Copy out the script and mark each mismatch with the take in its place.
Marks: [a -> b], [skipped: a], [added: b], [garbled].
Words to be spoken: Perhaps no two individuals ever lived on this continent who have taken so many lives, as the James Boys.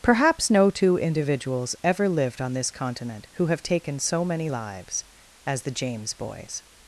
Perhaps no two individuals ever lived on this continent who have taken so many lives, as the James Boys.